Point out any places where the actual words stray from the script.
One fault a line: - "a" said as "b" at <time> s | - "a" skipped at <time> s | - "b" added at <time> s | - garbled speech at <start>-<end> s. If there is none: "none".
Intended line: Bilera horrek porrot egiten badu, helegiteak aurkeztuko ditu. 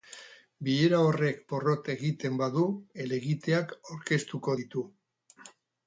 none